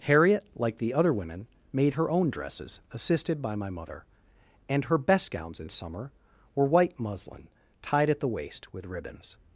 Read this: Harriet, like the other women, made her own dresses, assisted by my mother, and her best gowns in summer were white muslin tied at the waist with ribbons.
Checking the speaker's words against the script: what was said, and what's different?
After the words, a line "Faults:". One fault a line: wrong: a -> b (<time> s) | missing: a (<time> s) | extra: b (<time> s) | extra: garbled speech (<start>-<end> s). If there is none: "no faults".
Harriet, like the other women, made her own dresses, assisted by my mother, and her best gowns in summer were white muslin tied at the waist with ribbons.
Faults:
no faults